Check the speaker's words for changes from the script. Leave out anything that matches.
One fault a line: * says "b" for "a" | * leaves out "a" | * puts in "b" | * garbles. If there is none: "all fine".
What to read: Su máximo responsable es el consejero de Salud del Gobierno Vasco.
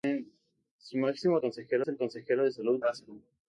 * says "consejero" for "responsable"
* leaves out "del Gobierno"